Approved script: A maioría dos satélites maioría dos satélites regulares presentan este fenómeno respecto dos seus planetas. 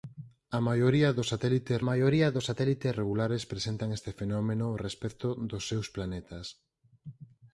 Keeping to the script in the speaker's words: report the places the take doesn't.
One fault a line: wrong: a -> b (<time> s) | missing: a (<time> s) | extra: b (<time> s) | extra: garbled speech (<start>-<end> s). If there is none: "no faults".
no faults